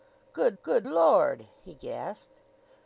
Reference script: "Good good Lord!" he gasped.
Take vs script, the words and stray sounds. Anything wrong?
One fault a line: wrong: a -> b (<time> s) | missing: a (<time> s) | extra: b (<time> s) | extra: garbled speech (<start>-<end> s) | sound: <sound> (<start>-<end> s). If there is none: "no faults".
no faults